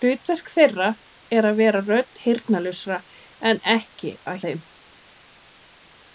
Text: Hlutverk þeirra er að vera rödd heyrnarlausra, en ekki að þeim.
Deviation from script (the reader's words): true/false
false